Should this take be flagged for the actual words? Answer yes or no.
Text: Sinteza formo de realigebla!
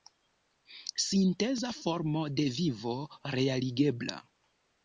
yes